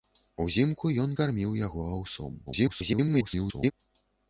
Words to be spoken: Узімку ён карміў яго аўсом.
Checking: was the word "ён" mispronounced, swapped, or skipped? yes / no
no